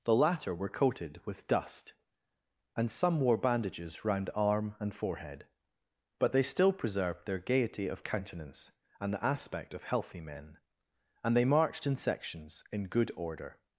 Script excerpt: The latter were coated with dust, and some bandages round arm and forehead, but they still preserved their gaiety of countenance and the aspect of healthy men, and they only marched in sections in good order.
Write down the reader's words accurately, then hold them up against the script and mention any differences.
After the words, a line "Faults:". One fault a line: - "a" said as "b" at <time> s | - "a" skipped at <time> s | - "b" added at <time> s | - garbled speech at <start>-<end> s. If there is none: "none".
The latter were coated with dust, and some wore bandages round arm and forehead, but they still preserved their gaiety of countenance and the aspect of healthy men, and they marched in sections in good order.
Faults:
- "wore" added at 3.2 s
- "only" skipped at 11.4 s